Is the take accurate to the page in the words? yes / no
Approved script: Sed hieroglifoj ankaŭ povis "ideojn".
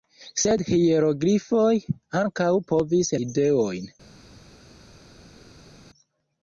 yes